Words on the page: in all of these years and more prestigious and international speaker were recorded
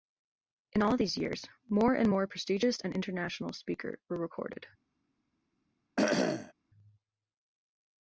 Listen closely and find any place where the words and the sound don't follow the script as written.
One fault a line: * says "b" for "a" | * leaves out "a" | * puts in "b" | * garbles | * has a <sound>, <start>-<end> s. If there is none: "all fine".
* puts in "more"
* has a cough, 6.0-6.5 s